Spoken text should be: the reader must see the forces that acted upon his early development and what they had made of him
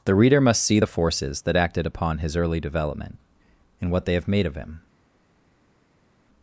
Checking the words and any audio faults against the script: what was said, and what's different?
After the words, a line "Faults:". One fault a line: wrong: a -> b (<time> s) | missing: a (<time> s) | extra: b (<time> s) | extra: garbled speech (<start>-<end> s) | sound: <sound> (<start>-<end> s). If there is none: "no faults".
the reader must see the forces that acted upon his early development and what they have made of him
Faults:
wrong: had -> have (4.1 s)